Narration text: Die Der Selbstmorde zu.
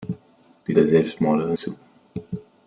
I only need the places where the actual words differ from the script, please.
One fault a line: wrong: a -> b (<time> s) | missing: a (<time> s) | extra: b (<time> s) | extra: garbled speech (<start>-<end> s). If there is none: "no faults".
no faults